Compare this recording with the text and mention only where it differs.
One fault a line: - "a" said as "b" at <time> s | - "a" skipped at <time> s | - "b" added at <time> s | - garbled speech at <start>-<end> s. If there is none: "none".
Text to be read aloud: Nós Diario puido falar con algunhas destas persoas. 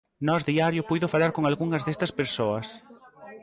none